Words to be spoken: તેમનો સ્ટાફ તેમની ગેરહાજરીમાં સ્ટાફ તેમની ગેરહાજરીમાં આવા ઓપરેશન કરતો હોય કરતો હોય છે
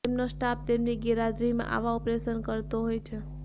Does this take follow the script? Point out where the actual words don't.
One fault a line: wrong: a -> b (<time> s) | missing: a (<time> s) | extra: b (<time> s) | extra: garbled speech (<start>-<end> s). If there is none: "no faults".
missing: સ્ટાફ તેમની ગેરહાજરીમાં (1.7 s)
missing: કરતો હોય (3.0 s)